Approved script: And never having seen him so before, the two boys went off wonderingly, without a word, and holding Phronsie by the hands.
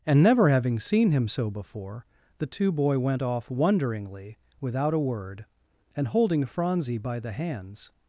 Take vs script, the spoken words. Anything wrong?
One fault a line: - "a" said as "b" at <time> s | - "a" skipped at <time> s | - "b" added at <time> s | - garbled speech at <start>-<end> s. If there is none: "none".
- "boys" said as "boy" at 2.7 s